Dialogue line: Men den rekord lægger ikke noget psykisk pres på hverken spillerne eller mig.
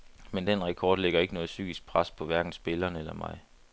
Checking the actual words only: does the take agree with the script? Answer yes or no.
yes